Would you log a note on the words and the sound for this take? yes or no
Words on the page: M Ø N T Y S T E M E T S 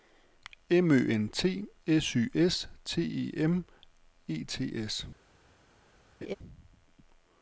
yes